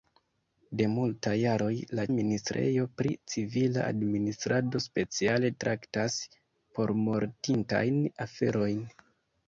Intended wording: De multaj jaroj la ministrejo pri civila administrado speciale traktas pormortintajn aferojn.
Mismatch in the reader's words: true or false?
false